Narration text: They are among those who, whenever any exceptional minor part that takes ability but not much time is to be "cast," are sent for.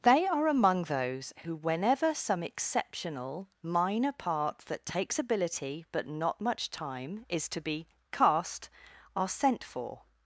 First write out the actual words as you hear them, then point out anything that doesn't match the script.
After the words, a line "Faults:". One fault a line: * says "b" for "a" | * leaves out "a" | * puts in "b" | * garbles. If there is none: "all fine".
They are among those who, whenever some exceptional minor part that takes ability but not much time is to be "cast," are sent for.
Faults:
* says "some" for "any"